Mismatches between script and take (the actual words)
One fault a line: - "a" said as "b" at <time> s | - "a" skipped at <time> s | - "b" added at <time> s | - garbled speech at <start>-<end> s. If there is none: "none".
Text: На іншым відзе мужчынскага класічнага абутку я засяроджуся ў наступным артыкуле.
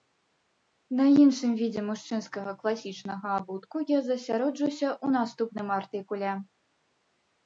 none